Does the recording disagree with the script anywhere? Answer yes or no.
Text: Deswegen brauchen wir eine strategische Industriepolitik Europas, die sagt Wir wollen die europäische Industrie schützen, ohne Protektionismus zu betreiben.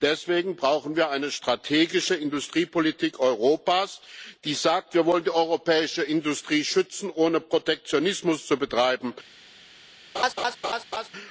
no